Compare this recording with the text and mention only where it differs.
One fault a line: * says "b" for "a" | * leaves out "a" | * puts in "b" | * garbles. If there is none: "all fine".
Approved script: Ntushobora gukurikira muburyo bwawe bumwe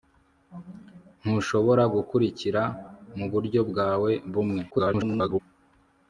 * garbles